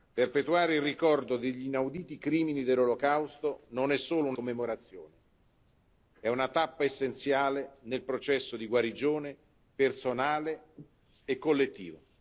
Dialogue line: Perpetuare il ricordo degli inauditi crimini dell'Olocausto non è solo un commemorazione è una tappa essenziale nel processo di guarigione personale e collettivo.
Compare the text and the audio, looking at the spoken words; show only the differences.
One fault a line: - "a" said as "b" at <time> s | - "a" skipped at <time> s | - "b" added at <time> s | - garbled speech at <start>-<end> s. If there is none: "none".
none